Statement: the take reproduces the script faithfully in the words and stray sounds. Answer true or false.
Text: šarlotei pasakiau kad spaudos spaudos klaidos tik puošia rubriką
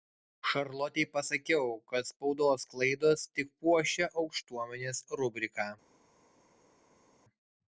false